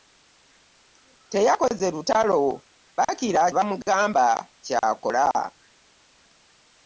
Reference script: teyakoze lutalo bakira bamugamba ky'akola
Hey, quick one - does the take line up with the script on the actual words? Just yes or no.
yes